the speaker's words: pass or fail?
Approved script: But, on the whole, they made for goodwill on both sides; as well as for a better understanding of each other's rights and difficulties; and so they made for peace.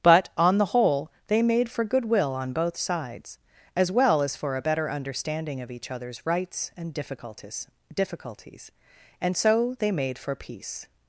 fail